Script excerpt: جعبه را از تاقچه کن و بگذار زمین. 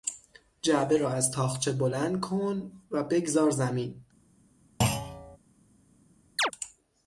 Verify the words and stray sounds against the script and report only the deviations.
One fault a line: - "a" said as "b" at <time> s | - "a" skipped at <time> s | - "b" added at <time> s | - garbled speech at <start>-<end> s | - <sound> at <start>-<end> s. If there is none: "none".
- "بلند" added at 1.7 s
- thud at 4.8-5.4 s
- chirp at 6.4-6.5 s